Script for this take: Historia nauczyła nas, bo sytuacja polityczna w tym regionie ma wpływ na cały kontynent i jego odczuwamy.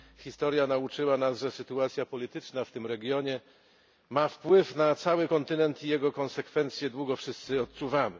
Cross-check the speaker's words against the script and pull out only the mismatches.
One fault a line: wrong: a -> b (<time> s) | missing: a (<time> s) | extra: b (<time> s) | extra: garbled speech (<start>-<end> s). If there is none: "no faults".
wrong: bo -> że (1.4 s)
extra: konsekwencje długo wszyscy (6.1 s)